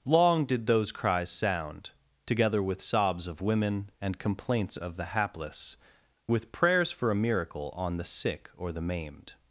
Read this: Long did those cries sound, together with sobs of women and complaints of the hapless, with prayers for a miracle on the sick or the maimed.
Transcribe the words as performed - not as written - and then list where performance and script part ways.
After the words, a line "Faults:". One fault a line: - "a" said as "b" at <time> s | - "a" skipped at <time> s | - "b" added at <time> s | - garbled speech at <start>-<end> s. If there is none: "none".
Long did those cries sound, together with sobs of women and complaints of the hapless, with prayers for a miracle on the sick or the maimed.
Faults:
none